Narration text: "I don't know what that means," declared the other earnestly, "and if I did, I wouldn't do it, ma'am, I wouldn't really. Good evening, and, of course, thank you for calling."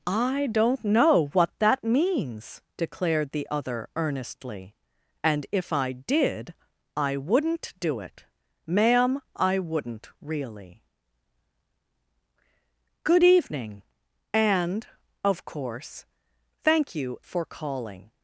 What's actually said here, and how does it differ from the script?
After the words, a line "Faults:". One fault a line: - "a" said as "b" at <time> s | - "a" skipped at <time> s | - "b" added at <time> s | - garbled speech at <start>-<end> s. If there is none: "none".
"I don't know what that means," declared the other earnestly, "and if I did, I wouldn't do it, ma'am, I wouldn't really. Good evening, and, of course, thank you for calling."
Faults:
none